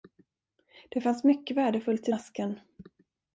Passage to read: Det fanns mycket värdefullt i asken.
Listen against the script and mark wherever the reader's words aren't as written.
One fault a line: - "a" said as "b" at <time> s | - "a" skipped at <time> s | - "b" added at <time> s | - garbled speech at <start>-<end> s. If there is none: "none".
none